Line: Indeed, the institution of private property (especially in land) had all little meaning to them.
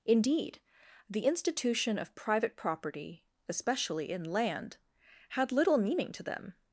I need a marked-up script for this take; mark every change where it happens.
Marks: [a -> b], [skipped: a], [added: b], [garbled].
Indeed, the institution of private property (especially in land) had [skipped: all] little meaning to them.